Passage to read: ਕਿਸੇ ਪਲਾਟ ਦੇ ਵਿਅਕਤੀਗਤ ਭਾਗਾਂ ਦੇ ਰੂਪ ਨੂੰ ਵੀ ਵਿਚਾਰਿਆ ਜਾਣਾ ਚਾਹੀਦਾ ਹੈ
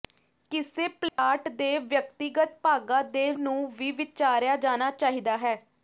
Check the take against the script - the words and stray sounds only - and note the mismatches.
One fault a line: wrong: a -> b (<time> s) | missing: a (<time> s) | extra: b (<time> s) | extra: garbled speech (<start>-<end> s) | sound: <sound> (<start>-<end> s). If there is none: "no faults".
sound: dropout (1.1-1.2 s)
missing: ਰੂਪ (3.3 s)